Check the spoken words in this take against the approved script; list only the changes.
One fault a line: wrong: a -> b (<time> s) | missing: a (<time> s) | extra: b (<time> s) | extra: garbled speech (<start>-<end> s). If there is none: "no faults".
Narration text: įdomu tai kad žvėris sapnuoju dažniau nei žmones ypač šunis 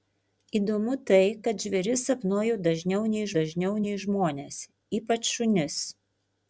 extra: dažniau nei (3.4 s)